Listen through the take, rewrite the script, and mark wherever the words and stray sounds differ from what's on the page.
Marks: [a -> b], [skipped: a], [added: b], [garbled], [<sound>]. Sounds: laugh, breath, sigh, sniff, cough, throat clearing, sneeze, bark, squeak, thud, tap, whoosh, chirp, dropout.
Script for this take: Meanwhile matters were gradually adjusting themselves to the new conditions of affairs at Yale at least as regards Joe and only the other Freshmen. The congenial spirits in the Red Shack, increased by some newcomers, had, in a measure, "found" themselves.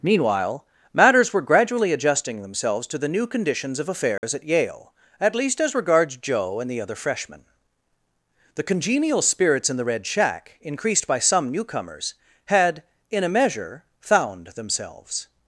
Meanwhile matters were gradually adjusting themselves to the new conditions of affairs [dropout] at Yale at least as regards Joe and [skipped: only] the other Freshmen. The congenial spirits in the Red Shack, increased by some newcomers, had, in a measure, "found" themselves.